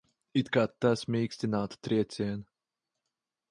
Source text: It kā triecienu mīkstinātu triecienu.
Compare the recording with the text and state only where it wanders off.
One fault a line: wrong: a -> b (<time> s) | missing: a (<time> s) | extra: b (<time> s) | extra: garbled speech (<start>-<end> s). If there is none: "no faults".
wrong: triecienu -> tas (0.8 s)